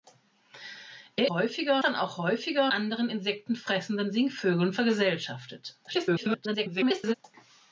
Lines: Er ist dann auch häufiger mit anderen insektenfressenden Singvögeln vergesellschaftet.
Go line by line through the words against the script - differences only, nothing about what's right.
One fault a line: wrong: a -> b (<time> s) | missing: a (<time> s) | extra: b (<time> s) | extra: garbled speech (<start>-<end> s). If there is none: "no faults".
wrong: ist -> häufiger (1.3 s)
missing: mit (2.7 s)
extra: garbled speech (5.9-7.1 s)